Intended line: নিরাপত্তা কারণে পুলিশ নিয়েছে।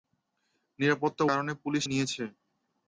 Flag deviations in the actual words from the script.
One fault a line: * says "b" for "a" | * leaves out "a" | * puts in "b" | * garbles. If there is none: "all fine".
all fine